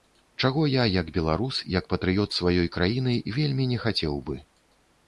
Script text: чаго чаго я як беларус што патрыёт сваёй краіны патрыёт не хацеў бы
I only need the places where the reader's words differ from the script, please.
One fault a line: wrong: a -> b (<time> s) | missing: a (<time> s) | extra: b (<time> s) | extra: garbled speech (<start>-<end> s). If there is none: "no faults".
missing: чаго (0.6 s)
wrong: што -> як (1.8 s)
wrong: патрыёт -> вельмі (3.4 s)